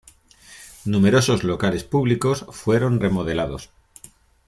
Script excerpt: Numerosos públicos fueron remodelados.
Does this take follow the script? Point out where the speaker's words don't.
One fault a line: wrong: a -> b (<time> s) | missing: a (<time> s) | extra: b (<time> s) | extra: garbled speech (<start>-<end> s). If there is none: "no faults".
extra: locales (1.4 s)